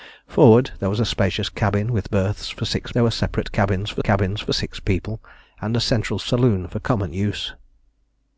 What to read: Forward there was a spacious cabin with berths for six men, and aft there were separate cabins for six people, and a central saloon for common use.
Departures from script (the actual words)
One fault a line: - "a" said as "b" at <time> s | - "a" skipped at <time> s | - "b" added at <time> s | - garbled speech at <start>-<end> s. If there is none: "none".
- "men and aft" skipped at 2.9 s
- "cabins for" added at 4.0 s